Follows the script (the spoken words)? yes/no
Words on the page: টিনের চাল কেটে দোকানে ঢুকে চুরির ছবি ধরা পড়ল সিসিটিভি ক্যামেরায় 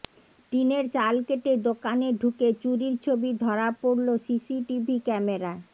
yes